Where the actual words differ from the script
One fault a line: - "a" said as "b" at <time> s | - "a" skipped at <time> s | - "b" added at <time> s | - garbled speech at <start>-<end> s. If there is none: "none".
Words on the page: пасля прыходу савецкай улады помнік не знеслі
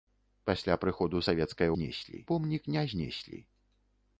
- "улады" said as "знеслі" at 1.8 s